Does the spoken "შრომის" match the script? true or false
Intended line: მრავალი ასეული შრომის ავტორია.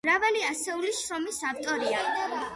true